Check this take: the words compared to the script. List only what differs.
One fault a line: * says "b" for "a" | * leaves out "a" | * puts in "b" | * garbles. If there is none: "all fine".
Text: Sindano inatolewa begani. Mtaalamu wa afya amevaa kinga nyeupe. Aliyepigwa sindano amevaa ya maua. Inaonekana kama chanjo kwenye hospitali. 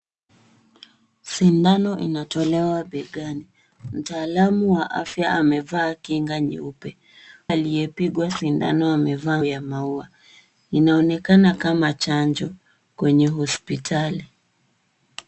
all fine